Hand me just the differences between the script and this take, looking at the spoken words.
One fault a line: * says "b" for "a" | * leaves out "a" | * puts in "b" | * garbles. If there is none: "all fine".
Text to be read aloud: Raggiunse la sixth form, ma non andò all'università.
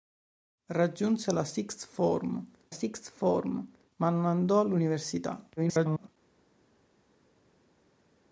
* puts in "sixth form"
* garbles